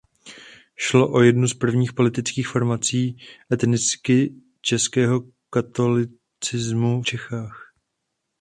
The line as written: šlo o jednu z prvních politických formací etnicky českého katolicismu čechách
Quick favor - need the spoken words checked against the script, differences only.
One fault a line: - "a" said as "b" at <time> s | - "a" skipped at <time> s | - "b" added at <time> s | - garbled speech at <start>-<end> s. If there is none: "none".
none